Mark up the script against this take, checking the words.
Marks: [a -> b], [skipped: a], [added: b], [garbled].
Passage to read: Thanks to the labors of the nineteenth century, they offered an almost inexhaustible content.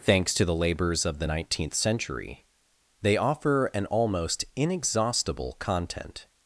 Thanks to the labors of the nineteenth century, they [offered -> offer] an almost inexhaustible content.